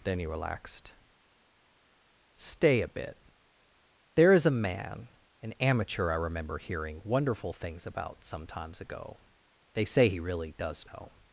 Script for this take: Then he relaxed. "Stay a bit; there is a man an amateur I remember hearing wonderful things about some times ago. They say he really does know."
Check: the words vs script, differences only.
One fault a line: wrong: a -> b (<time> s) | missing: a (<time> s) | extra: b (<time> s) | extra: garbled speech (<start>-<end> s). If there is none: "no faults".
no faults